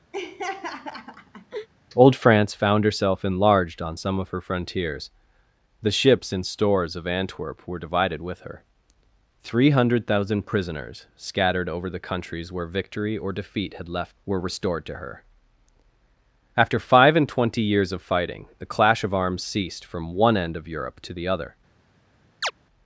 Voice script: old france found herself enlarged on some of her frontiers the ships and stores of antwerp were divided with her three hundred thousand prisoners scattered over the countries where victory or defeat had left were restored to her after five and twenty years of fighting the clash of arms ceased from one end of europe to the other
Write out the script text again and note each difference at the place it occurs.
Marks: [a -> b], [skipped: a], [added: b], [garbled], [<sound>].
[laugh] old france found herself enlarged on some of her frontiers the ships and stores of antwerp were divided with her three hundred thousand prisoners scattered over the countries where victory or defeat had left were restored to her after five and twenty years of fighting the clash of arms ceased from one end of europe to the other [chirp]